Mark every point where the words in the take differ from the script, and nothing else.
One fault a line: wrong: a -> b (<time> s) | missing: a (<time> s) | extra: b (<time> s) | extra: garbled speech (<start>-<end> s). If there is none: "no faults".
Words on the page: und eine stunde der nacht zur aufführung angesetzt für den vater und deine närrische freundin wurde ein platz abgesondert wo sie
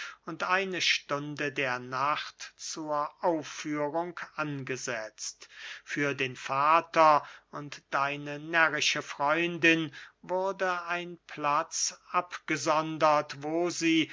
no faults